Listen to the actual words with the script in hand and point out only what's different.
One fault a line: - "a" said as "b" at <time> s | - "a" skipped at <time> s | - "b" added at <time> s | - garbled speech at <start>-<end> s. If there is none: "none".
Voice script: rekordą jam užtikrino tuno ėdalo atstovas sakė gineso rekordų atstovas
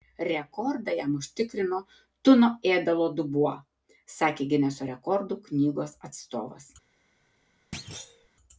- "atstovas" said as "dubuo" at 3.2 s
- "knygos" added at 5.5 s